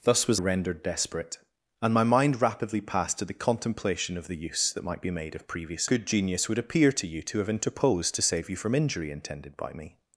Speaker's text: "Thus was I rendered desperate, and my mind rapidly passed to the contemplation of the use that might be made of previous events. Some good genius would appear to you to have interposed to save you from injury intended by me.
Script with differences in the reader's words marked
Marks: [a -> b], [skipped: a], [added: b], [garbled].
"Thus was [skipped: I] rendered desperate, and my mind rapidly passed to the contemplation of the use that might be made of previous [skipped: events. Some] good genius would appear to you to have interposed to save you from injury intended by me.